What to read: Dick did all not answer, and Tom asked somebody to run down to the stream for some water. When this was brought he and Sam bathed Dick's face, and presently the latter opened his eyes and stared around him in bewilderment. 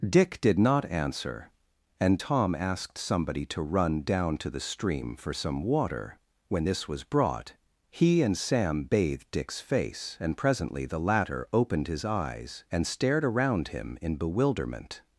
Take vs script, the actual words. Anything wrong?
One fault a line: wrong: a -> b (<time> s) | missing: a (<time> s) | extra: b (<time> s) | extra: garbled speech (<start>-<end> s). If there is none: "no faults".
missing: all (0.6 s)